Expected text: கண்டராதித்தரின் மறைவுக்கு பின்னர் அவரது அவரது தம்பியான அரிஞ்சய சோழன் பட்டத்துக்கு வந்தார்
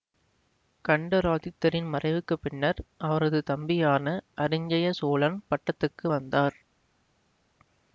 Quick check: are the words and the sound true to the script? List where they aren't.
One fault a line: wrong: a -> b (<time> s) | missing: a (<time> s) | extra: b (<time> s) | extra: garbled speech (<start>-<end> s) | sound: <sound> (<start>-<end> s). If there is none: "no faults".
missing: அவரது (3.4 s)